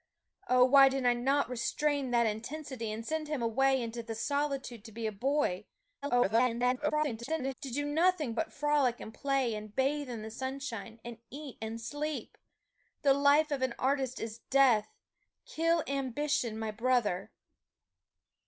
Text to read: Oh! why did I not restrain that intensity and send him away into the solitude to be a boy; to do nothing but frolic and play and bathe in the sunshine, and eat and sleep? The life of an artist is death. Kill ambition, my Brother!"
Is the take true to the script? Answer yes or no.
no